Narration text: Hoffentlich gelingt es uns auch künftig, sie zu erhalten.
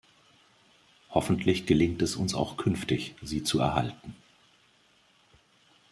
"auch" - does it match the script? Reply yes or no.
yes